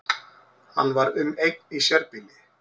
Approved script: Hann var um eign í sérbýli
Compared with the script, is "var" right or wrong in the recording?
right